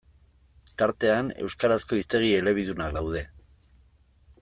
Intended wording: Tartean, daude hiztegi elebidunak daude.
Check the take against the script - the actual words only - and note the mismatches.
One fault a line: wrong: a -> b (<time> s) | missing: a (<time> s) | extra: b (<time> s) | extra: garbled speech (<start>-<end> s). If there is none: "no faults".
wrong: daude -> euskarazko (1.4 s)